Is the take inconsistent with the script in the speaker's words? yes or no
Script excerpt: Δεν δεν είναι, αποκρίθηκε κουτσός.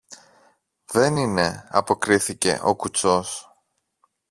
yes